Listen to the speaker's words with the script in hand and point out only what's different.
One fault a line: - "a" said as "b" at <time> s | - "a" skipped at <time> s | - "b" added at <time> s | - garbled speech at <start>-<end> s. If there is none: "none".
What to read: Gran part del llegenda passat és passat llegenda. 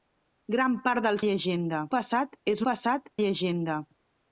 none